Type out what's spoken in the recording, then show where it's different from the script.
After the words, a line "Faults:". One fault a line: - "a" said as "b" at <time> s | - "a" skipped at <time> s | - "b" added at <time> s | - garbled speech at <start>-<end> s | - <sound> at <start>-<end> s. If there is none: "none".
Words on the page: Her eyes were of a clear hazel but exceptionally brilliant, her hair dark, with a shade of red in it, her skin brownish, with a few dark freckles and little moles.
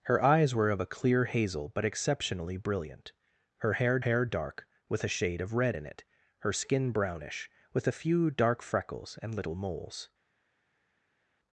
Her eyes were of a clear hazel but exceptionally brilliant, her hair hair dark, with a shade of red in it, her skin brownish, with a few dark freckles and little moles.
Faults:
- "hair" added at 4.0 s